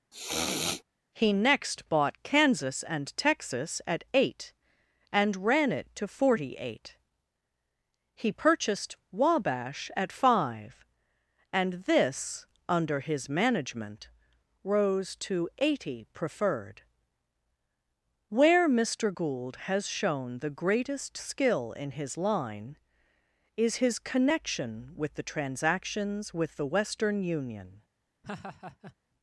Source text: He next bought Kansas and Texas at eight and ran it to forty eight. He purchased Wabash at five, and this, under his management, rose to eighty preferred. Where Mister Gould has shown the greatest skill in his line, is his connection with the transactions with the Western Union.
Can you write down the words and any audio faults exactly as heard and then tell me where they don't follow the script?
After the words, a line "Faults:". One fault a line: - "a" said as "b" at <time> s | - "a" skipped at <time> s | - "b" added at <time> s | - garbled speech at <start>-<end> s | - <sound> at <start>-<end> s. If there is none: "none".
He next bought Kansas and Texas at eight and ran it to forty eight. He purchased Wabash at five, and this, under his management, rose to eighty preferred. Where Mister Gould has shown the greatest skill in his line, is his connection with the transactions with the Western Union.
Faults:
- sniff at 0.1-0.8 s
- laugh at 28.2-29.0 s